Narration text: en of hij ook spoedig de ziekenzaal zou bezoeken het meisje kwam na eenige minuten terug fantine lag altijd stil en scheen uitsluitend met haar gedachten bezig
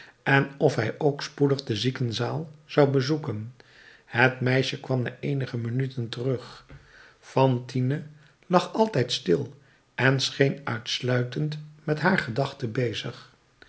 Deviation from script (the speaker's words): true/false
false